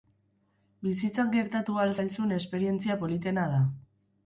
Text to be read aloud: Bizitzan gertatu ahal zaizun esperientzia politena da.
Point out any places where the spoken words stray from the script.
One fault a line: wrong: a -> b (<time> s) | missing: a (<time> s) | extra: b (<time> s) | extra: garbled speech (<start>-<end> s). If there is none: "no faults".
no faults